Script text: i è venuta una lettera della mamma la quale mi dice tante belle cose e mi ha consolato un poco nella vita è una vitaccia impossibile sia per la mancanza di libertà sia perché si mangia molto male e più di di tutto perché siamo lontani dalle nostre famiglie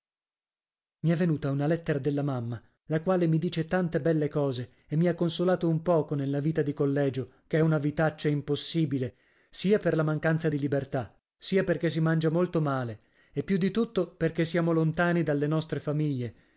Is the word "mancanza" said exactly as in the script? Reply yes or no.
yes